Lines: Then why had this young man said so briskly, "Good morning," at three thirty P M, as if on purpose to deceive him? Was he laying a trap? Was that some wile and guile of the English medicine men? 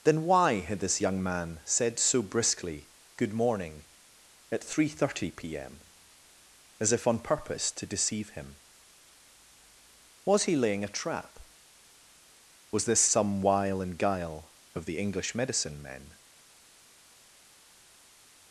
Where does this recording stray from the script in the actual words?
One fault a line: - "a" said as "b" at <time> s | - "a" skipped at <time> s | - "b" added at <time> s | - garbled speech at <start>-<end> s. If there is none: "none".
- "that" said as "this" at 12.9 s